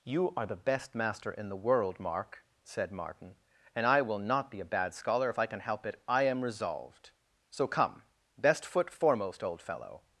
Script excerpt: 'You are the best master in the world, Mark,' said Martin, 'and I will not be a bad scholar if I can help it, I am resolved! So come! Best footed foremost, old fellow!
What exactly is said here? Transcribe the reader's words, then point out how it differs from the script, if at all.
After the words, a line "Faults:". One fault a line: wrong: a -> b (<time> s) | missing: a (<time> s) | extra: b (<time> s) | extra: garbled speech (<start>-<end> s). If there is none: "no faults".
'You are the best master in the world, Mark,' said Martin, 'and I will not be a bad scholar if I can help it, I am resolved! So come! Best foot foremost, old fellow!
Faults:
wrong: footed -> foot (8.7 s)